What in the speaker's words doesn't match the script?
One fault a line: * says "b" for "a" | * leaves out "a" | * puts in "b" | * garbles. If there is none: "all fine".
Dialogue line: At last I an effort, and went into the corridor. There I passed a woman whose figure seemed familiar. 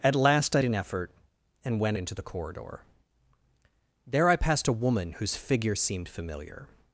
all fine